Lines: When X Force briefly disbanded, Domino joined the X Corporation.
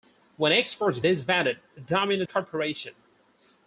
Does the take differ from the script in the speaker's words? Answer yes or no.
yes